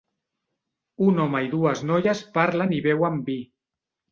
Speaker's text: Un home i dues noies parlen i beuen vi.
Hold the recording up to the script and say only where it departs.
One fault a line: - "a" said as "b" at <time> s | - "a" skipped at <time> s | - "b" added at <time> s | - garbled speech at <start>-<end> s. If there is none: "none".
none